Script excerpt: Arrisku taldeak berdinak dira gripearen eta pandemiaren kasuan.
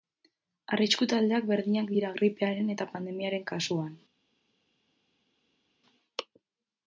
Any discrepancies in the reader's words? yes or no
no